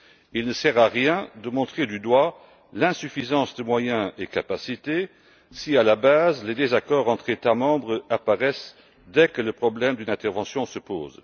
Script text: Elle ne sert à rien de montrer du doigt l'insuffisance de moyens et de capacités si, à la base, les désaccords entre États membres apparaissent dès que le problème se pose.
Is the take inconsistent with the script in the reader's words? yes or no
yes